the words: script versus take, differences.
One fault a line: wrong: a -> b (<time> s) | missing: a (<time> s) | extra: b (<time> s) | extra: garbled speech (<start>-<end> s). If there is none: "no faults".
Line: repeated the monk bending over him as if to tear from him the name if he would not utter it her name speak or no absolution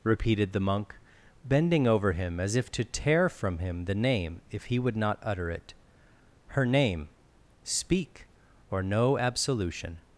no faults